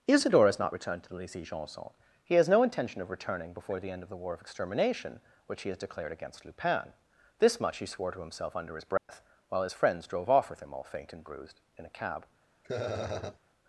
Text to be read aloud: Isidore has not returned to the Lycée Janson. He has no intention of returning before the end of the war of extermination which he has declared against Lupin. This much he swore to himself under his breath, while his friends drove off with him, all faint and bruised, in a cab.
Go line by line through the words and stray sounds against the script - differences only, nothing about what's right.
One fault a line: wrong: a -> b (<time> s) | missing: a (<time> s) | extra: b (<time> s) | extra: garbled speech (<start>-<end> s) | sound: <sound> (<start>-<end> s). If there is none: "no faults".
sound: dropout (9.0-9.1 s)
sound: laugh (12.6-13.4 s)